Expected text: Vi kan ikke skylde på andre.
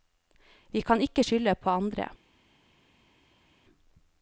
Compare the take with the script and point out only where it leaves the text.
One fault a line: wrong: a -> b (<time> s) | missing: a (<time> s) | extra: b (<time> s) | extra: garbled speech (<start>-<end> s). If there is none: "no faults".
no faults